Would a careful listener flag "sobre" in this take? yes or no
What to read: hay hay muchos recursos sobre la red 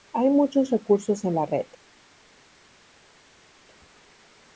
yes